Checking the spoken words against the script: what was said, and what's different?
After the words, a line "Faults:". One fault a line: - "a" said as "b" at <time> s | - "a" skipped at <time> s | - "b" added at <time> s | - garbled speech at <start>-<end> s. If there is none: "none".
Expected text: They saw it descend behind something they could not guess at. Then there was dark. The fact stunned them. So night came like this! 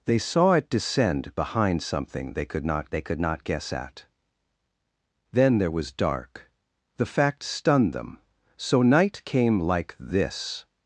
They saw it descend behind something they could not they could not guess at. Then there was dark. The fact stunned them. So night came like this!
Faults:
- "they could not" added at 2.9 s